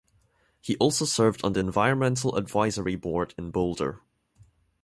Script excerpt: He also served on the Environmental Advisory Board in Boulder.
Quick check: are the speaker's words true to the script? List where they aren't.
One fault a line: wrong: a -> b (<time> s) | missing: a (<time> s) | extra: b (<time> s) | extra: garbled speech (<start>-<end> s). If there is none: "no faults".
no faults